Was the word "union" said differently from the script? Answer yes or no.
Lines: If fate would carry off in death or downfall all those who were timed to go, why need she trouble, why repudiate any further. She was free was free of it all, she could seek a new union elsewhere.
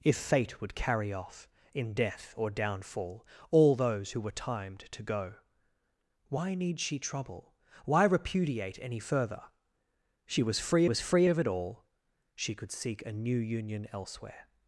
no